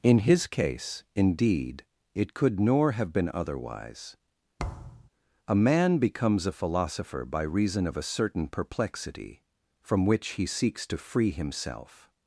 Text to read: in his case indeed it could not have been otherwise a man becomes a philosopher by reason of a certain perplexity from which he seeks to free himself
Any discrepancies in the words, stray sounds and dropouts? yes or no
yes